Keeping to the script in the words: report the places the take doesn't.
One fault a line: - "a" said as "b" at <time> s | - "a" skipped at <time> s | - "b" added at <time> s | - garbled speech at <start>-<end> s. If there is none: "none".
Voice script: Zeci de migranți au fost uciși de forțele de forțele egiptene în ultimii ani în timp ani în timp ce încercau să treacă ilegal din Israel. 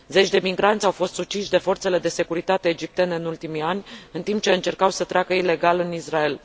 - "forțele" said as "securitate" at 2.1 s
- "ani în timp" skipped at 4.4 s
- "din" said as "în" at 5.8 s